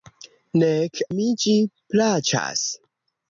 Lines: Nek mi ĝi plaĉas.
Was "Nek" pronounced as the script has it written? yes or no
yes